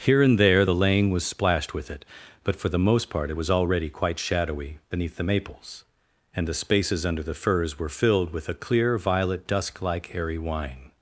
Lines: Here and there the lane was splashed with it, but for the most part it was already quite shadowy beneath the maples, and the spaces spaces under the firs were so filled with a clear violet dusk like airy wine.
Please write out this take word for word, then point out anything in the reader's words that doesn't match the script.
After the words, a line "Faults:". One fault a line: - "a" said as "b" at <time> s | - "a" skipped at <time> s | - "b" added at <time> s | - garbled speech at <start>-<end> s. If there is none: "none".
Here and there the lane was splashed with it, but for the most part it was already quite shadowy beneath the maples, and the spaces under the firs were filled with a clear violet dusk like airy wine.
Faults:
- "spaces" skipped at 7.0 s
- "so" skipped at 7.9 s